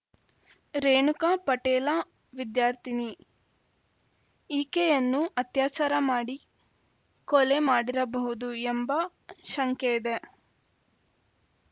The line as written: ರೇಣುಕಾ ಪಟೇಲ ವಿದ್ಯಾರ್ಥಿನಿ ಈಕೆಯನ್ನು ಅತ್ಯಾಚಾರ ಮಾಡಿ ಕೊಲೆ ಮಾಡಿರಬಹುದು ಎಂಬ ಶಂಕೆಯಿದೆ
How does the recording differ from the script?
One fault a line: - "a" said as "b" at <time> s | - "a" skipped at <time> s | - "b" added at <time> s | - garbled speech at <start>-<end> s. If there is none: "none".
none